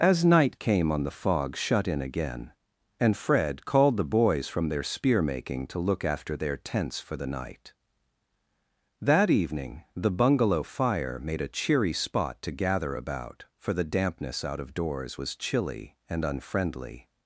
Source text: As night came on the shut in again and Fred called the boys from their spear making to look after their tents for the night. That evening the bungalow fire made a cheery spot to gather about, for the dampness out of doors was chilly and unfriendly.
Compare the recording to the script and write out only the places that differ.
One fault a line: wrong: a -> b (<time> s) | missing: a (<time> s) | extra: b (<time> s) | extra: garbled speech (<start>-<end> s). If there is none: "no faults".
extra: fog (1.2 s)